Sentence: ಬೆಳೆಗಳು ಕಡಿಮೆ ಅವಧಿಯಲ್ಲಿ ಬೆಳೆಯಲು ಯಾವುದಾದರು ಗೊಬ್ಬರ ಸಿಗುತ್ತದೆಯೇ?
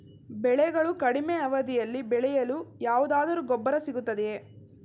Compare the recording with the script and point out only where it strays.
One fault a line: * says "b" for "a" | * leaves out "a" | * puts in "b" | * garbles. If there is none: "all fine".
all fine